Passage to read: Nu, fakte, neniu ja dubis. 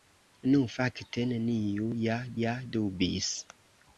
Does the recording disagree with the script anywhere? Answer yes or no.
yes